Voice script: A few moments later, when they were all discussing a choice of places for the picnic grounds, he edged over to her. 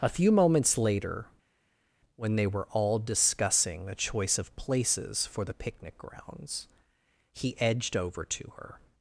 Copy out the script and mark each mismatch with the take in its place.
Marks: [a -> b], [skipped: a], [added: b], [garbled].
A few moments later, when they were all discussing a choice of places for the picnic grounds, he edged over to her.